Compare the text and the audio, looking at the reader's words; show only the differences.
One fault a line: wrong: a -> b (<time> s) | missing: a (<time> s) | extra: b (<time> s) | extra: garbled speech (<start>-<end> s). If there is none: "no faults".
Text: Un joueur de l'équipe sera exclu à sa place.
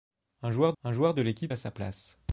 extra: un joueur (0.8 s)
missing: sera exclu (1.5 s)